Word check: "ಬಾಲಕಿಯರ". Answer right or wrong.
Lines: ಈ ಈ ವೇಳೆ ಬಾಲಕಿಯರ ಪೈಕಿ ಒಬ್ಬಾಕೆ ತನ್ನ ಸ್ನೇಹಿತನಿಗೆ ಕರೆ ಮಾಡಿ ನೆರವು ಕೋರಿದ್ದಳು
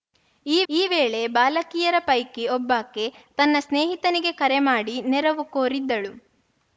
right